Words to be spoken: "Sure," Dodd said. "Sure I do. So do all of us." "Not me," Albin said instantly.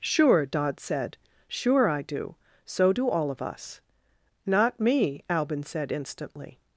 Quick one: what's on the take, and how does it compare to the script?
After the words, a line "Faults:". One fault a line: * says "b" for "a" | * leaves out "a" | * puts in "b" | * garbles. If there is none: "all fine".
"Sure," Dodd said. "Sure I do. So do all of us." "Not me," Albin said instantly.
Faults:
all fine